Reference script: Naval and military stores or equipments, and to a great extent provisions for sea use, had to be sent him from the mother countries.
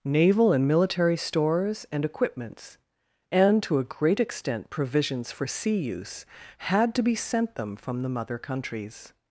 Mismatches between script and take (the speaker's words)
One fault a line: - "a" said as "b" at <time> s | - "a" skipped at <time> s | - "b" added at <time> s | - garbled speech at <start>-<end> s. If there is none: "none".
- "or" said as "and" at 1.9 s
- "him" said as "them" at 7.5 s